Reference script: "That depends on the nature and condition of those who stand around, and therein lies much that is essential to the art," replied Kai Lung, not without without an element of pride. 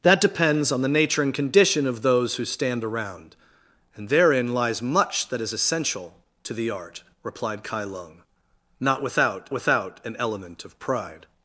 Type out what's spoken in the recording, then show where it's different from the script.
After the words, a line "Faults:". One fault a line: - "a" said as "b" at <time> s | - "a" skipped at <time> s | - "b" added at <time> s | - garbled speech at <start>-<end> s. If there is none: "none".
"That depends on the nature and condition of those who stand around, and therein lies much that is essential to the art," replied Kai Lung, not without without an element of pride.
Faults:
none